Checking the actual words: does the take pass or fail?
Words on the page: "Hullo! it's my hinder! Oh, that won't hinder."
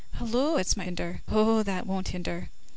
pass